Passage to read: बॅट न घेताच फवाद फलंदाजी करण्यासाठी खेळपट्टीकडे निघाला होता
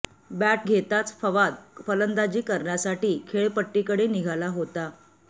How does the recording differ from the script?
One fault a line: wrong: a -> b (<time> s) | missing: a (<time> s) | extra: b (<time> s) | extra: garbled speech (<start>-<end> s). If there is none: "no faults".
missing: न (0.6 s)